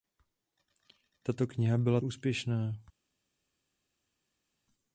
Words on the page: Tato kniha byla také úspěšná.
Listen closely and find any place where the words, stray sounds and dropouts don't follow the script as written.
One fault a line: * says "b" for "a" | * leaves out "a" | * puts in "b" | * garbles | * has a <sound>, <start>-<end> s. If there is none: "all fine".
* leaves out "také"